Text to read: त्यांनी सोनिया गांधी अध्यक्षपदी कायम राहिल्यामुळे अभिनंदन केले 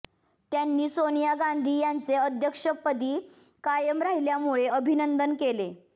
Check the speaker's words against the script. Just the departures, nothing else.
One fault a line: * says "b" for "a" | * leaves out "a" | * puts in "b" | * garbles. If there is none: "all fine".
* puts in "यांचे"